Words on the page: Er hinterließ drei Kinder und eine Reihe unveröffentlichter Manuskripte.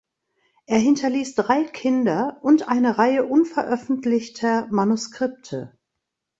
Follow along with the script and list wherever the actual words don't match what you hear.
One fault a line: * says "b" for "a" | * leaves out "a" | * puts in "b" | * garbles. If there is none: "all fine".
all fine